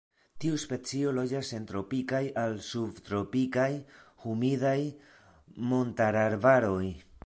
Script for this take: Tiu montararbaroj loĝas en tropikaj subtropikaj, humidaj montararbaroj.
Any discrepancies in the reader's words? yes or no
yes